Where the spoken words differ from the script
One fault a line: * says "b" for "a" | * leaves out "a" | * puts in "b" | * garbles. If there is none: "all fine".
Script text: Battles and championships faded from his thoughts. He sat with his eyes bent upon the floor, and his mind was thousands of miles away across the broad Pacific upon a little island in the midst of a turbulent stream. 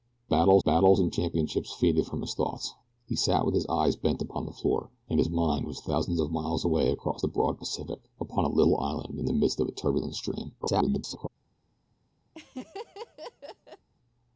* puts in "battles"
* garbles